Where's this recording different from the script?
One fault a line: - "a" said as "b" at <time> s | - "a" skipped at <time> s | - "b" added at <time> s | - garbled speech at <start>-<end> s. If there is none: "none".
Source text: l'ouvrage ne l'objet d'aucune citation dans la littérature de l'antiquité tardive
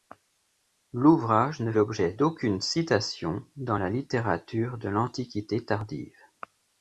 none